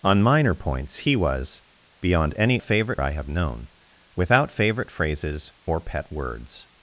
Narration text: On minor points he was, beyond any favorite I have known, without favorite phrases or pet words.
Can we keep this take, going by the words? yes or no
yes